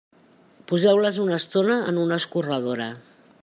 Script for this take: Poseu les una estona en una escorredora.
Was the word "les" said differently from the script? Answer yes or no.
no